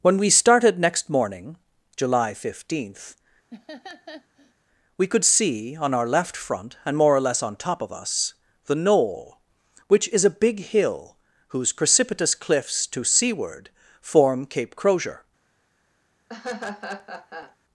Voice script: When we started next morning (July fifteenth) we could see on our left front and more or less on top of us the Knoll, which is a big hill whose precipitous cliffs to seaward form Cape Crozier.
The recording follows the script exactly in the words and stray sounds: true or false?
false